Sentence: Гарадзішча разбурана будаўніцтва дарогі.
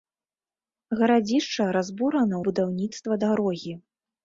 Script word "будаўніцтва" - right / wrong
right